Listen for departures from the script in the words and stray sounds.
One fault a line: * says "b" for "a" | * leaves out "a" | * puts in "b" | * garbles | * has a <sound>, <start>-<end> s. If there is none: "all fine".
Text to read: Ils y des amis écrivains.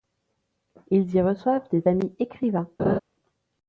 * puts in "reçoivent"
* has a laugh, 2.8-3.0 s